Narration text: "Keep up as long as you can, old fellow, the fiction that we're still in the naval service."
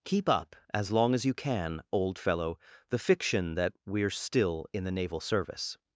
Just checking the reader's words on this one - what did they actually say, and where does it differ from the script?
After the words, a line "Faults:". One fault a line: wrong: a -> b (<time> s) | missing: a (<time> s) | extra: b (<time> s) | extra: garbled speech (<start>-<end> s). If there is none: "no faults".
"Keep up as long as you can, old fellow, the fiction that we're still in the naval service."
Faults:
no faults